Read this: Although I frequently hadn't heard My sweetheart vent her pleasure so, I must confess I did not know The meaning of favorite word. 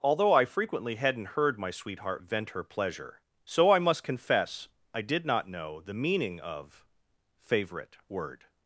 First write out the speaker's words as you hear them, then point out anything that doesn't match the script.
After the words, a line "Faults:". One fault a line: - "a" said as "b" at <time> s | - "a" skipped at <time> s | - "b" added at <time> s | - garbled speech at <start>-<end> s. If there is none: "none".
Although I frequently hadn't heard My sweetheart vent her pleasure so, I must confess I did not know The meaning of favorite word.
Faults:
none